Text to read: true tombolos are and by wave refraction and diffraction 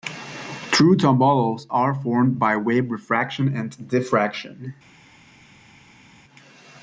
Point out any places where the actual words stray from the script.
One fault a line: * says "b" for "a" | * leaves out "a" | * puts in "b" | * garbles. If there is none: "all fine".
* says "formed" for "and"